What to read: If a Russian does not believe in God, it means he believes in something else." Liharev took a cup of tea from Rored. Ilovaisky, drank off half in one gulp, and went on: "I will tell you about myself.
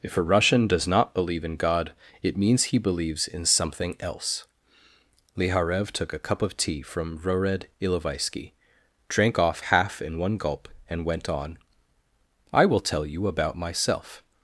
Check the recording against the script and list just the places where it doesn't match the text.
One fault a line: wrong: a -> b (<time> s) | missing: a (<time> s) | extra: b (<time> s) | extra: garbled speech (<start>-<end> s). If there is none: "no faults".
no faults